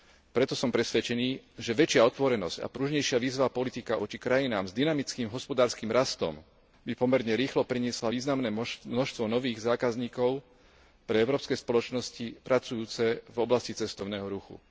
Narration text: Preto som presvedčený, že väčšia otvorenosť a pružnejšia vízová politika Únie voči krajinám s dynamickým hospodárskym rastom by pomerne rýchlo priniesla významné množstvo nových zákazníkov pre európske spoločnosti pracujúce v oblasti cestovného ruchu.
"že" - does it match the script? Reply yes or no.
yes